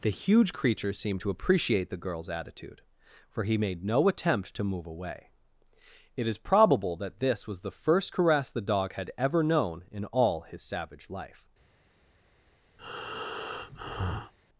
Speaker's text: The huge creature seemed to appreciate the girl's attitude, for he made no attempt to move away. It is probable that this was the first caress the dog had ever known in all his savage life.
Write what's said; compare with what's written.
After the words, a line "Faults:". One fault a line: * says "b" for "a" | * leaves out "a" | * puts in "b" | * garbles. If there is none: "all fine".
The huge creature seemed to appreciate the girl's attitude, for he made no attempt to move away. It is probable that this was the first caress the dog had ever known in all his savage life.
Faults:
all fine